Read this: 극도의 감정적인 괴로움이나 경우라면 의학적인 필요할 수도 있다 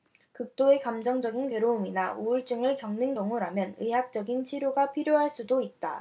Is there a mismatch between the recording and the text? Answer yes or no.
yes